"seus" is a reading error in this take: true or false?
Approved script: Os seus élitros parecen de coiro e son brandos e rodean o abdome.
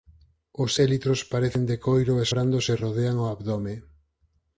true